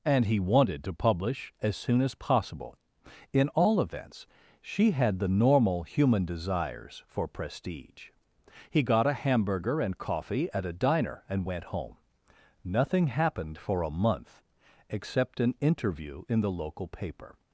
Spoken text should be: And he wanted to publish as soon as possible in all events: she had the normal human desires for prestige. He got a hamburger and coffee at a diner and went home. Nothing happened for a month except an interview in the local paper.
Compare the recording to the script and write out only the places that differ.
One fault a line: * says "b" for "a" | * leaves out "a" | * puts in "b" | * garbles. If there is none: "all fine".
all fine